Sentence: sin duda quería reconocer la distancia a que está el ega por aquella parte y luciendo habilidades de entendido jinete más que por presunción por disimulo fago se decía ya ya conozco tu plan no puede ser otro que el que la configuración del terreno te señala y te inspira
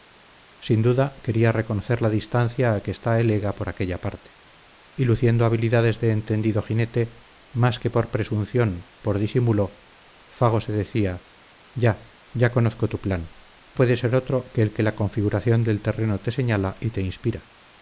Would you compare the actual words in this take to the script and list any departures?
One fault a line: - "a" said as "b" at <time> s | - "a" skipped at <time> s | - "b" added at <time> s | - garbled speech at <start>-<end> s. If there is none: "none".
- "no" skipped at 13.3 s